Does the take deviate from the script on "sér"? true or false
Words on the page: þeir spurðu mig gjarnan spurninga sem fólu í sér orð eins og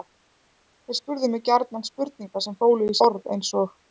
true